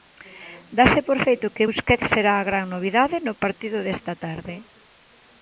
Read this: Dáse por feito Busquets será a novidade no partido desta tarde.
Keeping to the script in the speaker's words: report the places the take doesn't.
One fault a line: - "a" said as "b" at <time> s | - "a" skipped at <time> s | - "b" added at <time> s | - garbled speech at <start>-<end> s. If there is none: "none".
- "que" added at 1.6 s
- "gran" added at 2.5 s